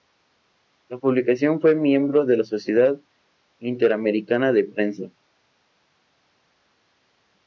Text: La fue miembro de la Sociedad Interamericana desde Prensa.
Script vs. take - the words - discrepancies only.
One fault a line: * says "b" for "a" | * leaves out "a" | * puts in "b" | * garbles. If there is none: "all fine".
* puts in "publicación"
* says "de" for "desde"